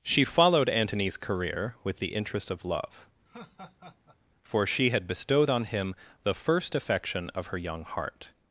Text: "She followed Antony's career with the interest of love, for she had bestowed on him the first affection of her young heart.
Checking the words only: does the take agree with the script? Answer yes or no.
yes